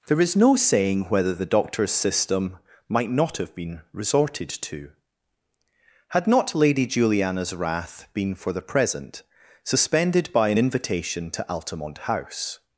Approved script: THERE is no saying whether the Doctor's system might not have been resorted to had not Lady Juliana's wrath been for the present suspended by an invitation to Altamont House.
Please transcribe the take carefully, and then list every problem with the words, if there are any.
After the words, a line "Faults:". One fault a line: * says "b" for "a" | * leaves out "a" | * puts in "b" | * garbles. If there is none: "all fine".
THERE is no saying whether the Doctor's system might not have been resorted to had not Lady Juliana's wrath been for the present suspended by an invitation to Altamont House.
Faults:
all fine